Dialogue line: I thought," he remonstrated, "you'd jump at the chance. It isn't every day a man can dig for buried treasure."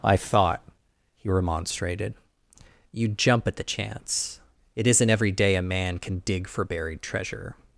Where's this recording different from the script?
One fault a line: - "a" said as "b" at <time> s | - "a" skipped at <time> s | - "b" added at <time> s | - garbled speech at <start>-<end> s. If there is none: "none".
none